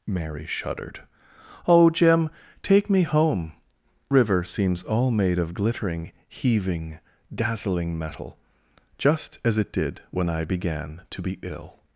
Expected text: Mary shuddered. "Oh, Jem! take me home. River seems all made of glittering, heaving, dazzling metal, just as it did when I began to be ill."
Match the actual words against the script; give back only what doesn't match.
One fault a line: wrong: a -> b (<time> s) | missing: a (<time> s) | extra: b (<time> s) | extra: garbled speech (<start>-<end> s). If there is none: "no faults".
no faults